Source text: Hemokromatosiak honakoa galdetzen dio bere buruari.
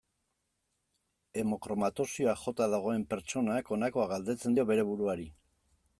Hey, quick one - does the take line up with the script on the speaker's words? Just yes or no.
no